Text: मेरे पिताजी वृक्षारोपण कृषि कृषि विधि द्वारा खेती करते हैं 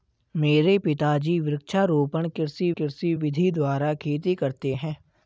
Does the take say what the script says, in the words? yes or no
yes